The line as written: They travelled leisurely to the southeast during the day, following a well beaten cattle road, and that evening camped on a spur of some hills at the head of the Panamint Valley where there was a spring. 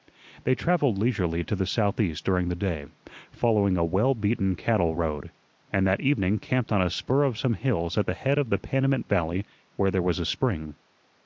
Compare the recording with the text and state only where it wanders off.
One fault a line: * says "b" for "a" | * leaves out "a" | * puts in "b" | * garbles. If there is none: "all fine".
all fine